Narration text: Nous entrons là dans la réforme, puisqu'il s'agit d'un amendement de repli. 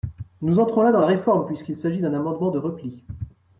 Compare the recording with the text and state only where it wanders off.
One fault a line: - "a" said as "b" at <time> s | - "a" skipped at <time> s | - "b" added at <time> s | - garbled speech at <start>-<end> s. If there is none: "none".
none